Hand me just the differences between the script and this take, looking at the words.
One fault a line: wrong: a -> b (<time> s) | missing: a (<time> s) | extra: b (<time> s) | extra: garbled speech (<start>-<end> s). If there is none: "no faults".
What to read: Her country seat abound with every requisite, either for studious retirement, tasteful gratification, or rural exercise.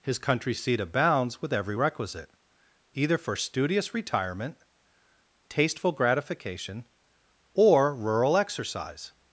wrong: Her -> His (0.0 s)
wrong: abound -> abounds (0.8 s)